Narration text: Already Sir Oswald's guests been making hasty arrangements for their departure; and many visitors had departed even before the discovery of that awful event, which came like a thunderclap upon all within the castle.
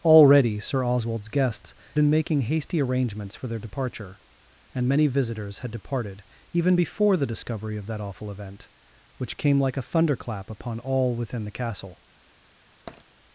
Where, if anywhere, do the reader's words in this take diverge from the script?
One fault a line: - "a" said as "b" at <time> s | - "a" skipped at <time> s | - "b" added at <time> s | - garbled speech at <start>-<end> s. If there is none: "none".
none